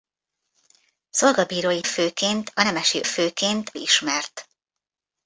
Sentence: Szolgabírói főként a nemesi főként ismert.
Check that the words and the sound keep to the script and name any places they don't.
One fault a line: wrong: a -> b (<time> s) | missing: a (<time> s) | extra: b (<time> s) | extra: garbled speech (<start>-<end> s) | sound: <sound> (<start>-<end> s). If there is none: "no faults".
no faults